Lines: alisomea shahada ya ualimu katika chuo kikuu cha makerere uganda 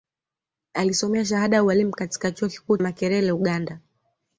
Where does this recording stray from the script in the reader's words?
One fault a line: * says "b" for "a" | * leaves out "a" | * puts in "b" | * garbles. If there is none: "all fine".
* leaves out "cha"